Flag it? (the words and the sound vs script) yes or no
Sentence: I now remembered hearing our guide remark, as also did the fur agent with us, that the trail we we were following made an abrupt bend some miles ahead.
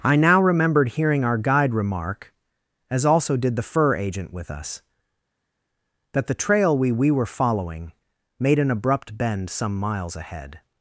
no